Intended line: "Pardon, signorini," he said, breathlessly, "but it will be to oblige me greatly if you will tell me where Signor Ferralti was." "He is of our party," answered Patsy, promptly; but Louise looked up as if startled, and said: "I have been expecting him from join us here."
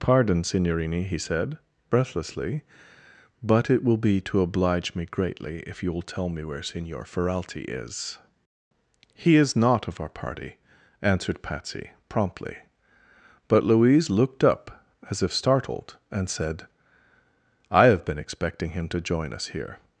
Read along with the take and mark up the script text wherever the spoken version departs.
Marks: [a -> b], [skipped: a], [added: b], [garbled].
"Pardon, signorini," he said, breathlessly, "but it will be to oblige me greatly if you will tell me where Signor Ferralti [was." -> is] "He is [added: not] of our party," answered Patsy, promptly; but Louise looked up as if startled, and said: "I have been expecting him [from -> to] join us here."